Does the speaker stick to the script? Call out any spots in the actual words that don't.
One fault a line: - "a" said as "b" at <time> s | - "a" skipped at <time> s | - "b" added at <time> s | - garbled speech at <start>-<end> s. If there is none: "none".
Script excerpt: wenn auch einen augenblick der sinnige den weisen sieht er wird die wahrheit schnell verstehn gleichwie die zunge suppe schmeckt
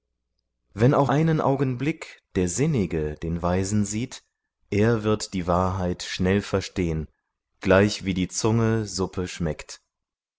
none